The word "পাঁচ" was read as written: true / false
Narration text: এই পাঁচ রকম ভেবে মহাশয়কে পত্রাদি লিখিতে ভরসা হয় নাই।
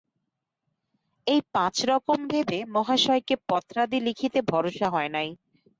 true